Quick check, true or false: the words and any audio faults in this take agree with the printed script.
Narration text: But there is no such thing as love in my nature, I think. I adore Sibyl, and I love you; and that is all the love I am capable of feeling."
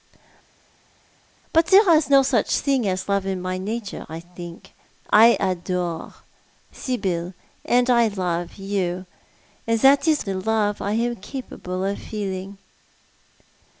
false